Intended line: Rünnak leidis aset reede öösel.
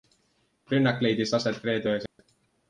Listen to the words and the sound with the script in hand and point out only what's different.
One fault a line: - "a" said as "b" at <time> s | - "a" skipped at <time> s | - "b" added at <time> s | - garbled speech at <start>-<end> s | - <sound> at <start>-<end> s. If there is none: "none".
- dropout at 2.1-2.2 s